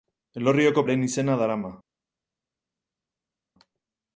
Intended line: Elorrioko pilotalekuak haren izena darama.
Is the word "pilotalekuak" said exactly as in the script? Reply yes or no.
no